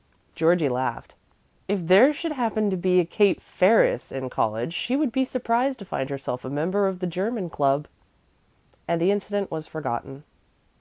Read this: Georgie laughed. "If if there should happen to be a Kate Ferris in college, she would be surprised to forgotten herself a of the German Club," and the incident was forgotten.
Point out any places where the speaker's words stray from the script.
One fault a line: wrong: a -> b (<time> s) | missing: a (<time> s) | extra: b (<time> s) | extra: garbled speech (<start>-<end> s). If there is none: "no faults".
missing: if (1.9 s)
wrong: forgotten -> find (5.8 s)
extra: member (6.5 s)